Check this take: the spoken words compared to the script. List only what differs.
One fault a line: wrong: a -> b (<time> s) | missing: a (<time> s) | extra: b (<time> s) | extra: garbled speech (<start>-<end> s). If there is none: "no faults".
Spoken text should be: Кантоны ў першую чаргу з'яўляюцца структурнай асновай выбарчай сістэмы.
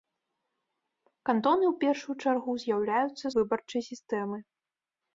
missing: структурнай асновай (3.2 s)